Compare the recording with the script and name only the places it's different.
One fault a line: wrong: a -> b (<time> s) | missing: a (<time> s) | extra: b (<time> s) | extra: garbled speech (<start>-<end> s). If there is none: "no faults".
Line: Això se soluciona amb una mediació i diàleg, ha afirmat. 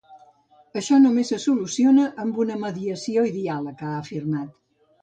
extra: només (1.0 s)